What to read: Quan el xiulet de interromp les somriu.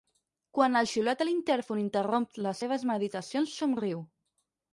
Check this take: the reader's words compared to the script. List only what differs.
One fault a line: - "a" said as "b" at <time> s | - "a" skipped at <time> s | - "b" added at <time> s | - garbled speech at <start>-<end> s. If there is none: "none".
- "l'intèrfon" added at 1.3 s
- "seves meditacions" added at 2.6 s